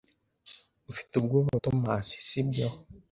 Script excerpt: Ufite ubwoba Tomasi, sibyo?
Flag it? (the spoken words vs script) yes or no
no